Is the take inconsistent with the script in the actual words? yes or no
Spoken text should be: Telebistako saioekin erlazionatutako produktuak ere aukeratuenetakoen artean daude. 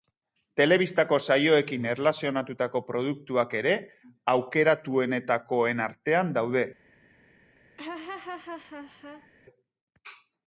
no